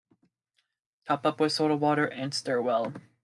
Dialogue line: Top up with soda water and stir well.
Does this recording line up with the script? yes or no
yes